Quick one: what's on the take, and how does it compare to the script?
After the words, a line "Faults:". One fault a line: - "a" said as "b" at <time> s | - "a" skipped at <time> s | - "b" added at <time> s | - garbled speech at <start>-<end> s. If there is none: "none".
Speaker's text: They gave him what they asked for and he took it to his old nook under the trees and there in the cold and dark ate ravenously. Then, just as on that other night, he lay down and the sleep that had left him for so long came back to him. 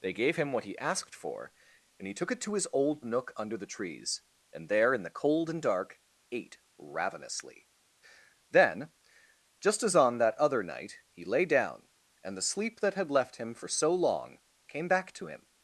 They gave him what he asked for and he took it to his old nook under the trees and there in the cold and dark ate ravenously. Then, just as on that other night, he lay down and the sleep that had left him for so long came back to him.
Faults:
- "they" said as "he" at 0.7 s